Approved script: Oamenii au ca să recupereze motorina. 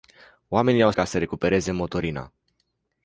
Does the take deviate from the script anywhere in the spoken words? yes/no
no